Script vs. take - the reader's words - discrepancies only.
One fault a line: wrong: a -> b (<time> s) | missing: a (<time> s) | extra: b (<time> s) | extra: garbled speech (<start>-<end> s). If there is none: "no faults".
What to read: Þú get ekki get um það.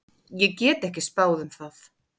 wrong: Þú -> Ég (0.4 s)
wrong: get -> spáð (1.1 s)